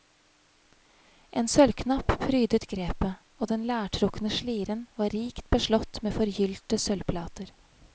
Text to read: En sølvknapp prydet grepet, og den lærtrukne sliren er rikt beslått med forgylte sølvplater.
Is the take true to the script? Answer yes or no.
no